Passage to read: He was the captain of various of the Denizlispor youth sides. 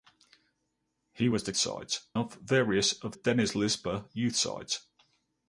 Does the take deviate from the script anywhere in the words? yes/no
yes